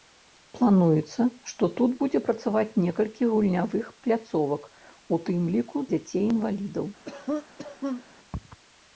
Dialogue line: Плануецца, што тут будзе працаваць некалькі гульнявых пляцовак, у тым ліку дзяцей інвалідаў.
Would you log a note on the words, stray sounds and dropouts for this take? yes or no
yes